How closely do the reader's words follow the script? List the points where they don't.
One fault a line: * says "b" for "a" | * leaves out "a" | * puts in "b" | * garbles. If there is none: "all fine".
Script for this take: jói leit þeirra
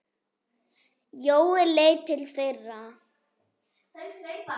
* puts in "til"